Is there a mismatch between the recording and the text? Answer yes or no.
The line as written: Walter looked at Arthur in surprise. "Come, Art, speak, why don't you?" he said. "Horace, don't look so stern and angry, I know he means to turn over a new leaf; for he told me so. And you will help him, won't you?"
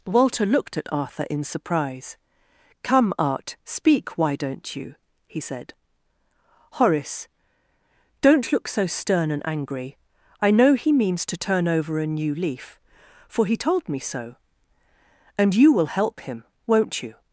no